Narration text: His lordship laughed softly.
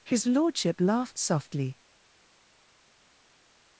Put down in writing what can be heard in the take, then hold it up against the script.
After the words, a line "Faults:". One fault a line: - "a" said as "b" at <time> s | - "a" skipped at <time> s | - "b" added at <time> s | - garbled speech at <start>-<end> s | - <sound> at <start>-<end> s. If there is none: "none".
His lordship laughed softly.
Faults:
none